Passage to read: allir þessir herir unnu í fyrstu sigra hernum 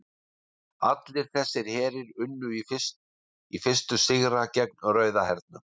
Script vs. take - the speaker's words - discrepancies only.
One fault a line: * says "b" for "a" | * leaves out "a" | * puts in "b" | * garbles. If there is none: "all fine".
* puts in "gegn rauða"